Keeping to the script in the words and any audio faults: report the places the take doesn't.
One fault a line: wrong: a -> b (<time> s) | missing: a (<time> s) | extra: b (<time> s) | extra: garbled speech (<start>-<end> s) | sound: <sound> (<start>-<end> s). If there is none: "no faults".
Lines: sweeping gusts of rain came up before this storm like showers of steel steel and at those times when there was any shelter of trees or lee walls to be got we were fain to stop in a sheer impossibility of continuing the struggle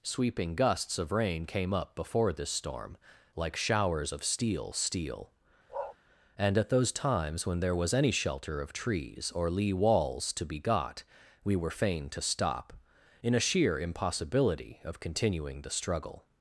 sound: bark (5.7-6.0 s)